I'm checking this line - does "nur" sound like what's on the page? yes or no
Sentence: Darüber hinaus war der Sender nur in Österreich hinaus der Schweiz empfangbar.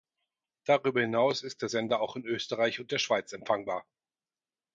no